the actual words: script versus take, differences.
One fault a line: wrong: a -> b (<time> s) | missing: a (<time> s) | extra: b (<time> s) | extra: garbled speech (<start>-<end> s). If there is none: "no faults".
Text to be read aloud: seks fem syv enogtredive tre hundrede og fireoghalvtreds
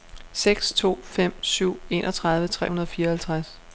extra: to (0.7 s)